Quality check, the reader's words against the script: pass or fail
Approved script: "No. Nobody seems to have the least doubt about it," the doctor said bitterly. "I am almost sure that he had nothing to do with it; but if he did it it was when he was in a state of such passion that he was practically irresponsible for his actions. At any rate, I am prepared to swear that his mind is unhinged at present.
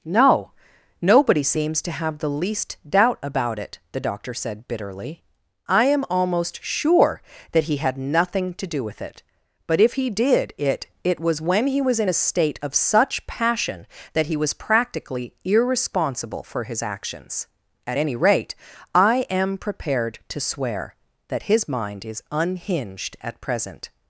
pass